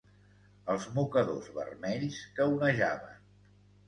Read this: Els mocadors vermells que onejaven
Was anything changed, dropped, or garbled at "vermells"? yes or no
no